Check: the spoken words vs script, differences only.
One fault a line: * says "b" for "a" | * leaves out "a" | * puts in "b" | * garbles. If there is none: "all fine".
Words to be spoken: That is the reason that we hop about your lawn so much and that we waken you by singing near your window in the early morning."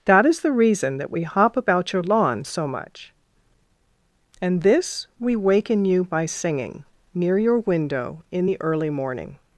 * says "this" for "that"